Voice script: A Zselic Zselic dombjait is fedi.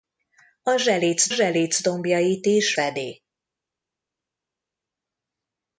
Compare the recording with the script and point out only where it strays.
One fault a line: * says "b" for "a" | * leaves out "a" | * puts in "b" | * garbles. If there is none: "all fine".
all fine